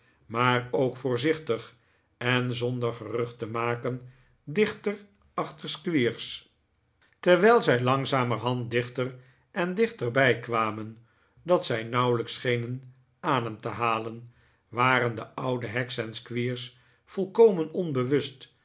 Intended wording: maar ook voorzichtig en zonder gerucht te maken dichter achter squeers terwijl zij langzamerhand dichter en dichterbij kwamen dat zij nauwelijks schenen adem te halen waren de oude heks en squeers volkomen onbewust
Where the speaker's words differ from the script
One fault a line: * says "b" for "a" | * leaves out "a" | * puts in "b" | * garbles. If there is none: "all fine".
all fine